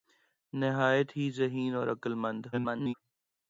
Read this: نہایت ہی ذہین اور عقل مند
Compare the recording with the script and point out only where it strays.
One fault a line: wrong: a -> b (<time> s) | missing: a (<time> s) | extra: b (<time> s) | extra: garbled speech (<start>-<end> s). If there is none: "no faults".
extra: garbled speech (2.5-2.9 s)